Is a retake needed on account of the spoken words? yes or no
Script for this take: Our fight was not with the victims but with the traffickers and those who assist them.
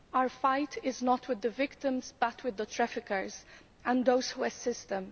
yes